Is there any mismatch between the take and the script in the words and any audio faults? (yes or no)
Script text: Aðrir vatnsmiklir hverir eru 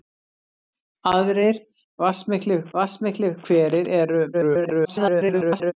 yes